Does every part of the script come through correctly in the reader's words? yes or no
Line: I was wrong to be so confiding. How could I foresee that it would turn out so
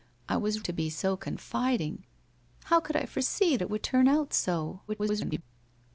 no